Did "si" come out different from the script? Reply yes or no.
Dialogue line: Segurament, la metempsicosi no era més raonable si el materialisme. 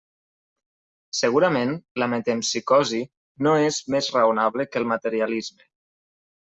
yes